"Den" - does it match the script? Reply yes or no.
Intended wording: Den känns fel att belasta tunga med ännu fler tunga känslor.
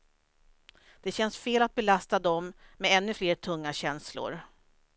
no